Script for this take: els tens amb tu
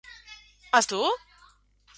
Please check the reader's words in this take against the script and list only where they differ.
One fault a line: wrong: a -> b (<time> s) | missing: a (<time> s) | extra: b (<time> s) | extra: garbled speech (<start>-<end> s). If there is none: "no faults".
missing: tens amb (0.9 s)